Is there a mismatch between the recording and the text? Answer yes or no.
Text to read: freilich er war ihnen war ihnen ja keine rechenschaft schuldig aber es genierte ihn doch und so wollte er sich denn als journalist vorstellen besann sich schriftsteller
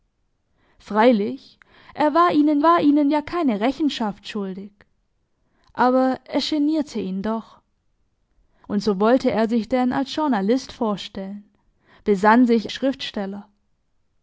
no